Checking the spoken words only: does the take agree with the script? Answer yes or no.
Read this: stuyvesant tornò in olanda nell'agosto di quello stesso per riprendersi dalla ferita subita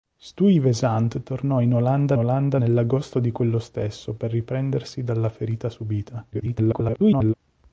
no